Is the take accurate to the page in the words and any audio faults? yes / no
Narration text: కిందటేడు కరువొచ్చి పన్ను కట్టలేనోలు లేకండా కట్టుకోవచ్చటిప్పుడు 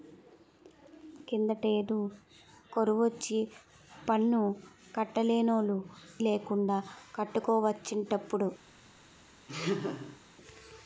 no